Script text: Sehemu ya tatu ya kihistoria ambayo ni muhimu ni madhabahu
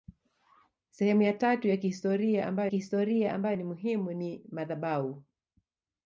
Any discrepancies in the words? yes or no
yes